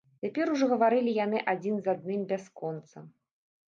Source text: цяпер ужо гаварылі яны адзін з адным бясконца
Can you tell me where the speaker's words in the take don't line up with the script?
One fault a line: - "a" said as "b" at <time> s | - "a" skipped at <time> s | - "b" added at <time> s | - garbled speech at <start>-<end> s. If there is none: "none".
none